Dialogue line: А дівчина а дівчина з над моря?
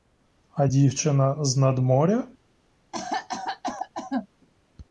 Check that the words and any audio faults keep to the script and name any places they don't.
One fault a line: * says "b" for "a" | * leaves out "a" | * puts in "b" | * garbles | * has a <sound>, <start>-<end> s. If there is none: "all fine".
* leaves out "а дівчина"
* has a cough, 2.9-4.3 s